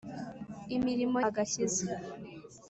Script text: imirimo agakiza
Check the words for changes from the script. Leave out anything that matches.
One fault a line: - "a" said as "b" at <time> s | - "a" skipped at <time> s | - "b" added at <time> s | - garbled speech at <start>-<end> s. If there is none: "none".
none